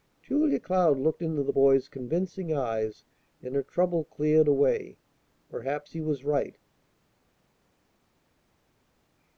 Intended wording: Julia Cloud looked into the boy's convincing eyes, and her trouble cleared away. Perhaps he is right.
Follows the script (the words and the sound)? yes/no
no